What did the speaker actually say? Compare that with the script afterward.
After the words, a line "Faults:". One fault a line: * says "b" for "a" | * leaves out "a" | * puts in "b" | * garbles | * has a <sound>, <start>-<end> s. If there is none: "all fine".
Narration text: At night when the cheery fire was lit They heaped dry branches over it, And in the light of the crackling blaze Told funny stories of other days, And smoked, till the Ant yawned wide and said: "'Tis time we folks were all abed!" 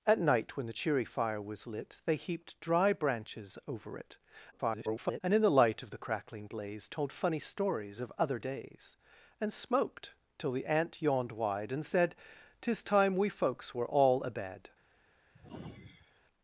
At night when the cheery fire was lit They heaped dry branches over it, [garbled] And in the light of the crackling blaze Told funny stories of other days, And smoked, till the Ant yawned wide and said: "'Tis time we folks were all abed!"
Faults:
* garbles
* has a sigh, 15.3-16.2 s